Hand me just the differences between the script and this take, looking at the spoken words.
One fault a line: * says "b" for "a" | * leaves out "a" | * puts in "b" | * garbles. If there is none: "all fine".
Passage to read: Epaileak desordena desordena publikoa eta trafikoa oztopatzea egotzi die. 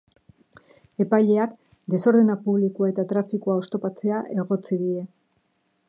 * leaves out "desordena"